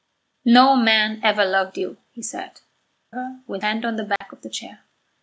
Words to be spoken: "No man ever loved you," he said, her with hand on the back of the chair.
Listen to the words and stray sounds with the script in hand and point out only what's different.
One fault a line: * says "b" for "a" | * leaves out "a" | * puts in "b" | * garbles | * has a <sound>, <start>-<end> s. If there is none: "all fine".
* has a dropout, 4.2-4.2 s